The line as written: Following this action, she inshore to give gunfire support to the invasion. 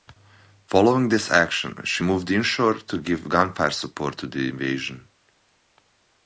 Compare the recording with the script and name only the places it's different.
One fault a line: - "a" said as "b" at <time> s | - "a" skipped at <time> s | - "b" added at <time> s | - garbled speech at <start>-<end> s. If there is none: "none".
- "moved" added at 2.0 s